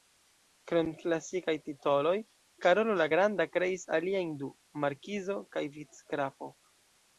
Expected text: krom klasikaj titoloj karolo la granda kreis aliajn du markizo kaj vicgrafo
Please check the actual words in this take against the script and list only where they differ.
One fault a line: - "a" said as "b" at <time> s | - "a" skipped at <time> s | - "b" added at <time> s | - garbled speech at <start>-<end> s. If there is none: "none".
none